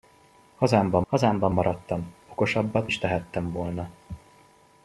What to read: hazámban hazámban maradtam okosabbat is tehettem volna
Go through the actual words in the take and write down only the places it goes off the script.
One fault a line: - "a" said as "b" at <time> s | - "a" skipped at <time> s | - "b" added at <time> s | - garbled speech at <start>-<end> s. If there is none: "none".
none